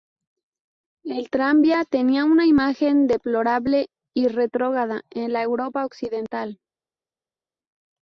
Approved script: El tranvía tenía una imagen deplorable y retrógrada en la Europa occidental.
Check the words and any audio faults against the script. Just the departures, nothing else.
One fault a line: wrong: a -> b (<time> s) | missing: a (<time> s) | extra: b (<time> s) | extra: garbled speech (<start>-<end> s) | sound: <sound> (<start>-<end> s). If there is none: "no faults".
no faults